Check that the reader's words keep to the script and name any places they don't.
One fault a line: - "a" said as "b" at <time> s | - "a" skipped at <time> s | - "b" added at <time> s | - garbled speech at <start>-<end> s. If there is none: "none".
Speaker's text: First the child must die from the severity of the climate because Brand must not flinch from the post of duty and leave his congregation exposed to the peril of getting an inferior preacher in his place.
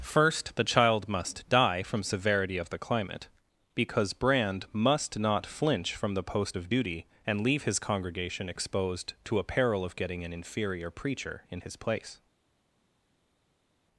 - "the" skipped at 2.0 s
- "the" said as "a" at 9.4 s